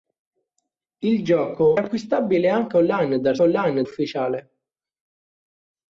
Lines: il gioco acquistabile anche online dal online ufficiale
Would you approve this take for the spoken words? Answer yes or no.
yes